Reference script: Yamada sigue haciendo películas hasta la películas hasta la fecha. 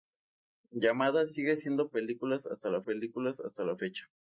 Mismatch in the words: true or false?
false